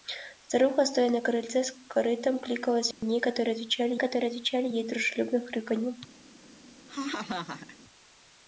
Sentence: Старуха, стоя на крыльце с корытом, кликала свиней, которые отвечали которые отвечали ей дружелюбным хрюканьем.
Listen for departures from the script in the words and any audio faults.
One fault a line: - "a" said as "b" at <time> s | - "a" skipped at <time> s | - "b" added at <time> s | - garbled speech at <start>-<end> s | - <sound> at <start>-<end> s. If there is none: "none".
- dropout at 2.9-3.0 s
- laugh at 6.9-7.8 s